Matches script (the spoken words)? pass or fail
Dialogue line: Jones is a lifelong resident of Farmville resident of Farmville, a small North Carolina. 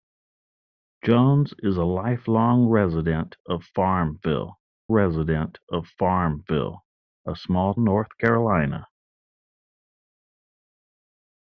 pass